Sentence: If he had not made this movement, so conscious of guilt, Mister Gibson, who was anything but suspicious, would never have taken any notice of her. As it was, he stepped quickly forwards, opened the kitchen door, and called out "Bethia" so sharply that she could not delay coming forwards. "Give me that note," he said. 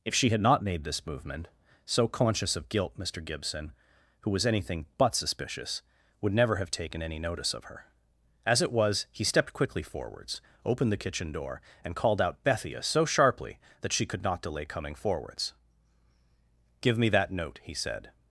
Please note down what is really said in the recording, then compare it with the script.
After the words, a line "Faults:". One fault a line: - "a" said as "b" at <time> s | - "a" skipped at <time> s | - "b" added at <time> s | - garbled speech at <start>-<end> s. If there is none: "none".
If she had not made this movement, so conscious of guilt, Mister Gibson, who was anything but suspicious, would never have taken any notice of her. As it was, he stepped quickly forwards, opened the kitchen door, and called out "Bethia" so sharply that she could not delay coming forwards. "Give me that note," he said.
Faults:
- "he" said as "she" at 0.1 s